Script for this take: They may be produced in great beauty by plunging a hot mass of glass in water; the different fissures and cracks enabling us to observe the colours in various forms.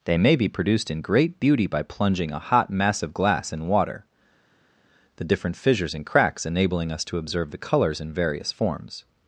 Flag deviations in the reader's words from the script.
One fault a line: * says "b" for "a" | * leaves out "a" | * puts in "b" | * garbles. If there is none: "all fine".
all fine